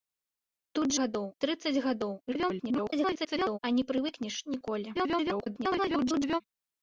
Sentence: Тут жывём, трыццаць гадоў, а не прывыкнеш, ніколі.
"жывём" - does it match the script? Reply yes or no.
no